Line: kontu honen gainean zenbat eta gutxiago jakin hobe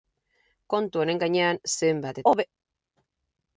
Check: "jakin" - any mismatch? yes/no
yes